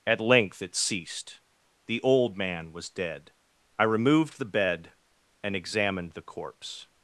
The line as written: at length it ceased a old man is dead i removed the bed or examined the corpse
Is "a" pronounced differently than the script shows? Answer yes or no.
yes